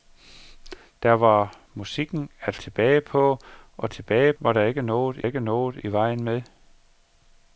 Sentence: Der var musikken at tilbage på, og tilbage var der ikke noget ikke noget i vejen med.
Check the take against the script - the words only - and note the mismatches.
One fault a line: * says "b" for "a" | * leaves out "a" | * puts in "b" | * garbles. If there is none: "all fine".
all fine